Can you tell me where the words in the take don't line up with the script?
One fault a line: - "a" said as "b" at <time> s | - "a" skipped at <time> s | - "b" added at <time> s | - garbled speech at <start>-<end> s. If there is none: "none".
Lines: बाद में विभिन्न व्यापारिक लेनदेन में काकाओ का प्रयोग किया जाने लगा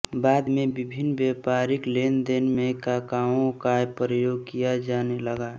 none